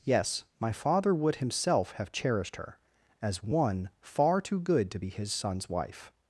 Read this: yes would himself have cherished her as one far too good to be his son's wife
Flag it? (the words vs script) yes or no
yes